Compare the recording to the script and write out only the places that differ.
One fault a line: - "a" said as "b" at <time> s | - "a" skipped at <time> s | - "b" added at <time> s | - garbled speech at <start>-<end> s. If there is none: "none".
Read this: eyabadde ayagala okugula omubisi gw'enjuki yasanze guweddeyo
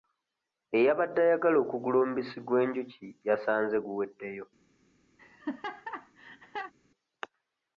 none